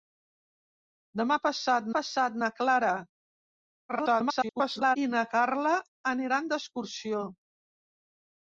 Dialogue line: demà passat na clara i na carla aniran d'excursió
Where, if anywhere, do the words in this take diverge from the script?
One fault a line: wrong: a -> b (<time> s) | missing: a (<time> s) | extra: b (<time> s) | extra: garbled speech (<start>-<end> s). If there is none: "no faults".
extra: passat (1.9 s)
extra: garbled speech (3.9-5.0 s)